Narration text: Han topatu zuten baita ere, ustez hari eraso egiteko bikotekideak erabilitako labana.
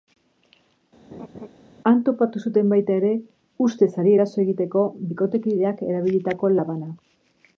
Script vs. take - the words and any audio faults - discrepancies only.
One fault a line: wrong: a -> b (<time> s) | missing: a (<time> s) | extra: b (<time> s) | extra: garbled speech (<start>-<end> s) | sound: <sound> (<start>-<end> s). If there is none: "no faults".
sound: laugh (1.1-1.5 s)